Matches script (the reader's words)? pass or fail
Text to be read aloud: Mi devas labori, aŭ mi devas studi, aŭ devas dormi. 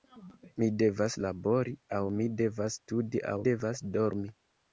pass